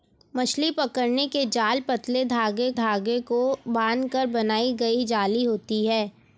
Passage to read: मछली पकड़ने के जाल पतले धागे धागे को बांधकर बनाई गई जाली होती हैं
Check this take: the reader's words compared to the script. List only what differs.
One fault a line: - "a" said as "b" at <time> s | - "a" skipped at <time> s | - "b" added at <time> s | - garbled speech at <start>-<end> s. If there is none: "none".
none